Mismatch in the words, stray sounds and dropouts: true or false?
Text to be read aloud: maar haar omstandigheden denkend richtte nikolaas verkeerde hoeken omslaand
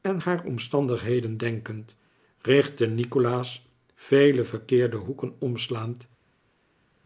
true